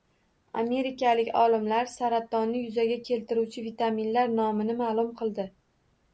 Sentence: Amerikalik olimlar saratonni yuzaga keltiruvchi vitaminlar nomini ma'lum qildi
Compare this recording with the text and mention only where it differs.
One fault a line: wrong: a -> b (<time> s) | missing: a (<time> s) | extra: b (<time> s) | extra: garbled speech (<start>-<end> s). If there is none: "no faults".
no faults